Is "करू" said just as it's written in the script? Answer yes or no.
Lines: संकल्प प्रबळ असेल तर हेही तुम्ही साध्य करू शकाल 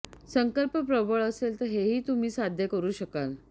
yes